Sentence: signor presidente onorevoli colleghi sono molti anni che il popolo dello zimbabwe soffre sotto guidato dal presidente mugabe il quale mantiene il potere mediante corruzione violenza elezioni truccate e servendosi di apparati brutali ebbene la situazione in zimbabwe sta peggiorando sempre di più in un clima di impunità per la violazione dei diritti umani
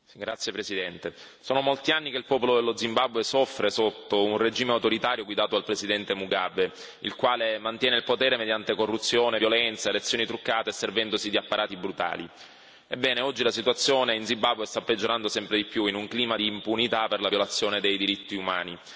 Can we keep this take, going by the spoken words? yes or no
no